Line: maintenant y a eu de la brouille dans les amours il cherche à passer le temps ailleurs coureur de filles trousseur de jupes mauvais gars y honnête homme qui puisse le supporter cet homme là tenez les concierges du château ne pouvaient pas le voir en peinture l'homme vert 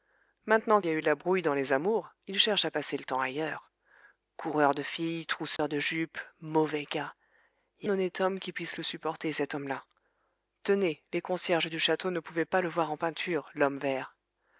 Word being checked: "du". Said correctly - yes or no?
yes